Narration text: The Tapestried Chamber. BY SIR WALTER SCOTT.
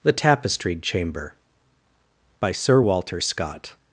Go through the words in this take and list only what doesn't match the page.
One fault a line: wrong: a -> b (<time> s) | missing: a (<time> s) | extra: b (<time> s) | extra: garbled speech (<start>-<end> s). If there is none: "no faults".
no faults